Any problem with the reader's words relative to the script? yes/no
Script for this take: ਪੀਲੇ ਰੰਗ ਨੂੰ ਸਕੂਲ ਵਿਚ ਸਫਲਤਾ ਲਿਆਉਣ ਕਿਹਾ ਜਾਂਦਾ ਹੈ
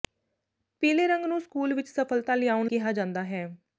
no